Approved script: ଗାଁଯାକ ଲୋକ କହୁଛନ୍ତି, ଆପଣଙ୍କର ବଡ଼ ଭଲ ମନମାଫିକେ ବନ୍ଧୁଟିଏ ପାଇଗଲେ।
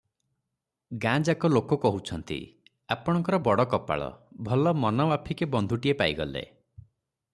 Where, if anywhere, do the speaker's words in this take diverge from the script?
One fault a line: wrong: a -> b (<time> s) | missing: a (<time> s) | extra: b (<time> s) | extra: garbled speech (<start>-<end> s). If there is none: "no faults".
extra: କପାଳ (3.6 s)